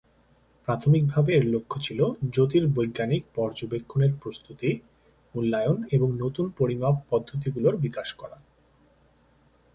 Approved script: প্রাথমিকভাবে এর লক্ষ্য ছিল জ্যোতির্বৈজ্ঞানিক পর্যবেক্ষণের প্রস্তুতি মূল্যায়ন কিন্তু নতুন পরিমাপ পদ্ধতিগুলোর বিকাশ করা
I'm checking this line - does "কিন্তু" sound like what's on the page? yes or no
no